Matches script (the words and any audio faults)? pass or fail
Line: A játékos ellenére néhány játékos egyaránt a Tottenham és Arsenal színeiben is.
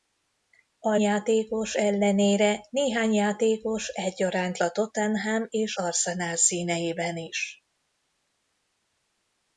pass